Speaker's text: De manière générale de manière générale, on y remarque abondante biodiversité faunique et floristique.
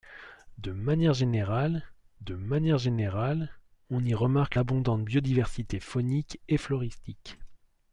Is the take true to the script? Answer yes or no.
yes